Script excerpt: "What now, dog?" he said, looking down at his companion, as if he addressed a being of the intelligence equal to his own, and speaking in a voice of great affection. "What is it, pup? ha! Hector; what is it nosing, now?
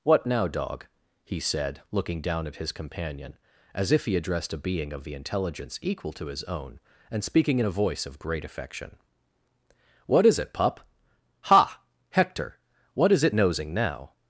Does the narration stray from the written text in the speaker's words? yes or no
no